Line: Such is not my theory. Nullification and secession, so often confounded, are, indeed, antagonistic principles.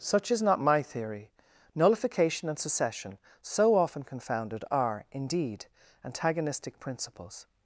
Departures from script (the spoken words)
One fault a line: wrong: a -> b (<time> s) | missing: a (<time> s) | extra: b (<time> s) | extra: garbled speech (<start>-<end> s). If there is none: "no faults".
no faults